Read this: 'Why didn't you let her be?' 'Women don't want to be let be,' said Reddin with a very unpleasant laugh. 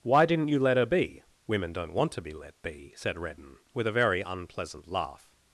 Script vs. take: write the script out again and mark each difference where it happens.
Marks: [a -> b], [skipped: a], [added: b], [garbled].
'Why didn't you let her be?' 'Women don't want to be let be,' said Reddin with a very unpleasant laugh.